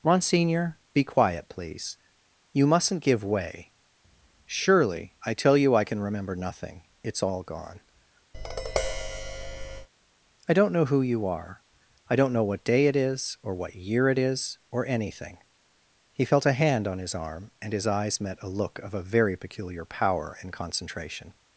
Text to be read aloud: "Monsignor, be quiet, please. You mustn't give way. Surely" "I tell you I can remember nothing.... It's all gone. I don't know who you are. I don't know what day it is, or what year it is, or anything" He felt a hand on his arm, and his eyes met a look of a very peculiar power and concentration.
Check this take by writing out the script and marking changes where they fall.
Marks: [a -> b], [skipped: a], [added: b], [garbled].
"Monsignor, be quiet, please. You mustn't give way. Surely" "I tell you I can remember nothing.... It's all gone. I don't know who you are. I don't know what day it is, or what year it is, or anything" He felt a hand on his arm, and his eyes met a look of a very peculiar power and concentration.